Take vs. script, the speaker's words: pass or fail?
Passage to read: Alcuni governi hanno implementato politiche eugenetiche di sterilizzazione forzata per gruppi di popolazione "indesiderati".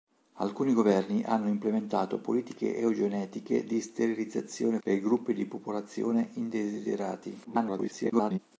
fail